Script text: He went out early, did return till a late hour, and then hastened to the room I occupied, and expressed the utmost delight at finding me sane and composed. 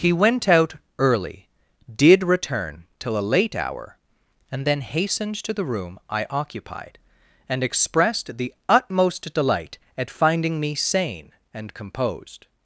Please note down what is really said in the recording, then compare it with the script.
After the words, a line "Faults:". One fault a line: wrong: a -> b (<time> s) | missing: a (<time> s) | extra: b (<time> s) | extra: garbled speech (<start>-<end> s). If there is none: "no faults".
He went out early, did return till a late hour, and then hastened to the room I occupied, and expressed the utmost delight at finding me sane and composed.
Faults:
no faults